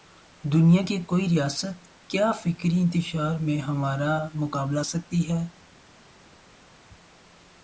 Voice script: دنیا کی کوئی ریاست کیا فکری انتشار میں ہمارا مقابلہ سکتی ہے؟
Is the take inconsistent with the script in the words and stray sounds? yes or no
no